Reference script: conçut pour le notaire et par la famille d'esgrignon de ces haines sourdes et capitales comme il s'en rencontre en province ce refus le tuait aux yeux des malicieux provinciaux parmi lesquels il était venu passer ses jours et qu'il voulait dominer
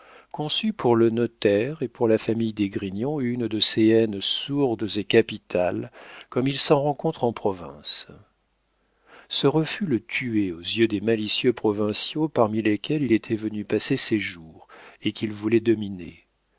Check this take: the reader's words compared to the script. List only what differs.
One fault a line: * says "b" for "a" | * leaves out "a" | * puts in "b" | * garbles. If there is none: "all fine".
* says "pour" for "par"
* puts in "une"